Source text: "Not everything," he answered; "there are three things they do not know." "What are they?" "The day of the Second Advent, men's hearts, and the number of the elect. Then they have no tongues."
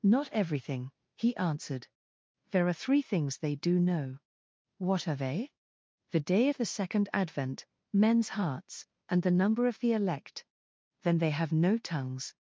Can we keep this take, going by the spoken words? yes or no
no